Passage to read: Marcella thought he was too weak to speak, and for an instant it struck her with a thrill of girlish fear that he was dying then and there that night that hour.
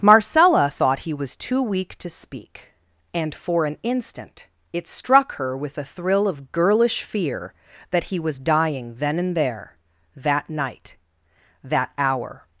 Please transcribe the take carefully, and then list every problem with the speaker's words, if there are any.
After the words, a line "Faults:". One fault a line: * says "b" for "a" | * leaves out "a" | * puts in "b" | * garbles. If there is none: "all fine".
Marcella thought he was too weak to speak, and for an instant it struck her with a thrill of girlish fear that he was dying then and there that night that hour.
Faults:
all fine